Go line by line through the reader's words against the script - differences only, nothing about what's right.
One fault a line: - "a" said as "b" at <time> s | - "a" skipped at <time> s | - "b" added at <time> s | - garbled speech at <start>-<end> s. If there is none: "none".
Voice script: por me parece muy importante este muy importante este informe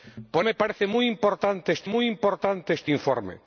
none